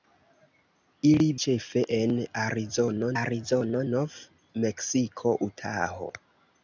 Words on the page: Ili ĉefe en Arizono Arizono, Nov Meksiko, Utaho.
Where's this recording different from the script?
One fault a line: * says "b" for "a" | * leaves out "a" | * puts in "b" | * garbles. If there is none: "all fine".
all fine